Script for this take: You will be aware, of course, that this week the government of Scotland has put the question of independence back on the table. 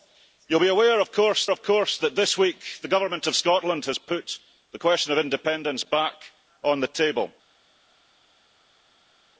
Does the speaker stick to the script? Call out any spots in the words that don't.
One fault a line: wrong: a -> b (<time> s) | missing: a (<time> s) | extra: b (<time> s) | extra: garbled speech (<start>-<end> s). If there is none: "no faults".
extra: of course (1.5 s)